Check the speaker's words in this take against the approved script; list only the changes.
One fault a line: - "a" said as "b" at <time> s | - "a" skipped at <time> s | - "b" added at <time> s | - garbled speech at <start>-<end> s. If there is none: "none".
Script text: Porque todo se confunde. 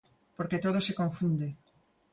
none